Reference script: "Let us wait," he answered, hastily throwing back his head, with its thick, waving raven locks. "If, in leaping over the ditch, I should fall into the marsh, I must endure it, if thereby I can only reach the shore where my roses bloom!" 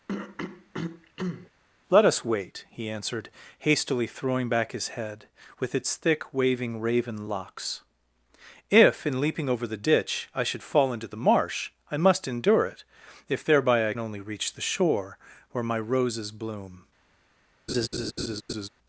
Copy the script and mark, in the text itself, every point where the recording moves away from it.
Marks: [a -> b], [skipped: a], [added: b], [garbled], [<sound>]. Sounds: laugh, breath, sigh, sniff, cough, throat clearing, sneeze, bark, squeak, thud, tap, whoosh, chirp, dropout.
[throat clearing] "Let us wait," he answered, hastily throwing back his head, with its thick, waving raven locks. "If, in leaping over the ditch, I should fall into the marsh, I must endure it, if thereby I [skipped: can] only reach the shore where my roses bloom!" [laugh]